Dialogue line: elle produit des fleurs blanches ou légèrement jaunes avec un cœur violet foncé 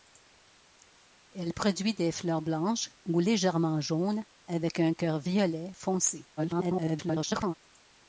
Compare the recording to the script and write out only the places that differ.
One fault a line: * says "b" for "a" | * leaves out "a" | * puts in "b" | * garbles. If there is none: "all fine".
* garbles